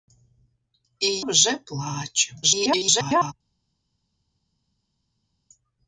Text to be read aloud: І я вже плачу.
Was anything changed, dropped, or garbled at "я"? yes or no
yes